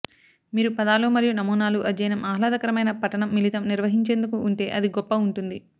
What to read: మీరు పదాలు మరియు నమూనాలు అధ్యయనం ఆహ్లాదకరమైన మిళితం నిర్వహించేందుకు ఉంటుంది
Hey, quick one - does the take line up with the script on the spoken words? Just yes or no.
no